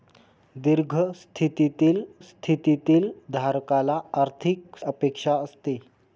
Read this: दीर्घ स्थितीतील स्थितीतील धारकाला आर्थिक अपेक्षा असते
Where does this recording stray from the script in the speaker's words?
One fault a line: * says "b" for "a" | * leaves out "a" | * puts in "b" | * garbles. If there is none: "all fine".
all fine